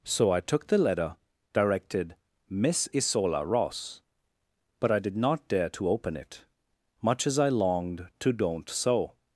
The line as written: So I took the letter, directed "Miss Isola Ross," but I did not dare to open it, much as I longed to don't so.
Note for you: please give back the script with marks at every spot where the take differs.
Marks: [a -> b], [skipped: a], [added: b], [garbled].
So I took the letter, directed "Miss Isola Ross," but I did not dare to open it, much as I longed to don't so.